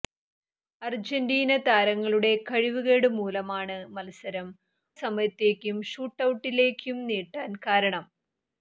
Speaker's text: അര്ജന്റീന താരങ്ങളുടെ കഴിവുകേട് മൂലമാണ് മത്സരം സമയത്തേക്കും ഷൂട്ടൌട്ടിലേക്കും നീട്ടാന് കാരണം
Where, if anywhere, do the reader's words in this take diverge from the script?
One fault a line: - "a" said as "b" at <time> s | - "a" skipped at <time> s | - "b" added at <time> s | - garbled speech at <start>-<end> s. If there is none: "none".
none